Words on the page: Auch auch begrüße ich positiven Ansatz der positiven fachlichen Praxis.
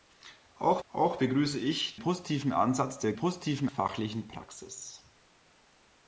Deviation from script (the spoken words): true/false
false